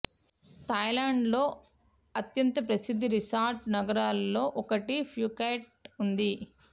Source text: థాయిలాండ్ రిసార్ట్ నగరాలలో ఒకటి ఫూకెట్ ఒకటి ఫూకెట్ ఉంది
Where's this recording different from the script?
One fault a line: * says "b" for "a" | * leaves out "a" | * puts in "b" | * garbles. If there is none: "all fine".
* puts in "లో అత్యంత ప్రసిద్ధ"
* leaves out "ఒకటి ఫూకెట్"